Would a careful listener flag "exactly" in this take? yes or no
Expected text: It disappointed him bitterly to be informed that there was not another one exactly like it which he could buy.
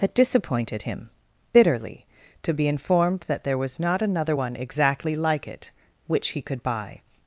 no